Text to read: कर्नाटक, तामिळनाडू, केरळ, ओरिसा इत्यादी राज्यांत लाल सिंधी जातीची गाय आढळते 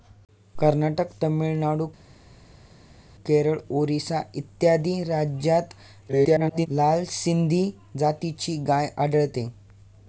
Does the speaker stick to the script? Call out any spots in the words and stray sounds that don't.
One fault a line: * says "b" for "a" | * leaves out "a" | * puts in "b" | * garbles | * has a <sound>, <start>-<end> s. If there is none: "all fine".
* garbles